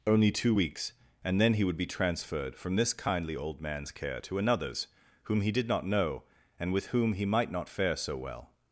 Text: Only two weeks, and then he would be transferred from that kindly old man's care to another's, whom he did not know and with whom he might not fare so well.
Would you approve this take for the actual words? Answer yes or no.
no